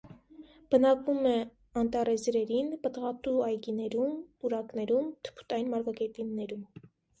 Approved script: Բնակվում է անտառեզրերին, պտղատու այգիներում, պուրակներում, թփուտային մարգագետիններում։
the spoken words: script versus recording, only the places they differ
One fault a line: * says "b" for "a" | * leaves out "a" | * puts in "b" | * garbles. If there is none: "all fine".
all fine